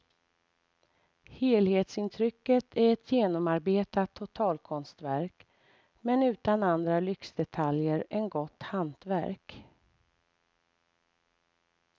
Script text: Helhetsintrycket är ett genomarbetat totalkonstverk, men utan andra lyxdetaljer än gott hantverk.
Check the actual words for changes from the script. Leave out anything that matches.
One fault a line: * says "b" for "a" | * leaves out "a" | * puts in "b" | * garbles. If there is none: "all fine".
all fine